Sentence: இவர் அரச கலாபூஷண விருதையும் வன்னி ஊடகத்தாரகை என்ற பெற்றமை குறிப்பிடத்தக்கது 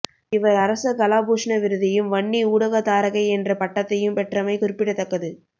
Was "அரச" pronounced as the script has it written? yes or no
yes